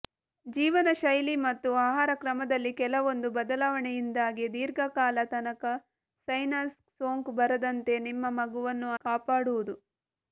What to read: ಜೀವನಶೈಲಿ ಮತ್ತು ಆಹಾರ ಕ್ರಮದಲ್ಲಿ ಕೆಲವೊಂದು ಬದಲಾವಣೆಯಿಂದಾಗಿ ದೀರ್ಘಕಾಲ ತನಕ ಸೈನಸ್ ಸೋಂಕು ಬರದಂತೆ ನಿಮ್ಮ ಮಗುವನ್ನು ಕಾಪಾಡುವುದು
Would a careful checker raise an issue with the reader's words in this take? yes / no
no